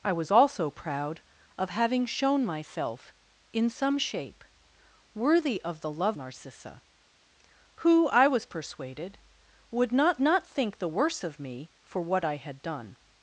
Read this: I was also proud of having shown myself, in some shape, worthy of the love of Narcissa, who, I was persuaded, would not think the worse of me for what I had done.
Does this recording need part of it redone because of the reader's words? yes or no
yes